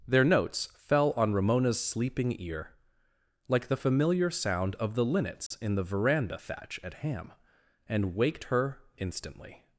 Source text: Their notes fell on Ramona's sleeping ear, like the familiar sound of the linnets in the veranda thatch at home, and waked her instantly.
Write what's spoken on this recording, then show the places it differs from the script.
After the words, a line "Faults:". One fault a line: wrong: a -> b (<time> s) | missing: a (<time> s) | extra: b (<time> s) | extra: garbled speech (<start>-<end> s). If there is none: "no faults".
Their notes fell on Ramona's sleeping ear, like the familiar sound of the linnets in the veranda thatch at ham, and waked her instantly.
Faults:
wrong: home -> ham (6.9 s)